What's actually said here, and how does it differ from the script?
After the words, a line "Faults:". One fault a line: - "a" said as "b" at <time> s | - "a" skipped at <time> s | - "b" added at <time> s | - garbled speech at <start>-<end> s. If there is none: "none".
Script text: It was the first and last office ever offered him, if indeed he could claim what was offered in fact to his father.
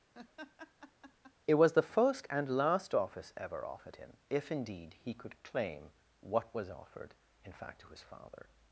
It was the first and last office ever offered him, if indeed he could claim what was offered in fact to his father.
Faults:
none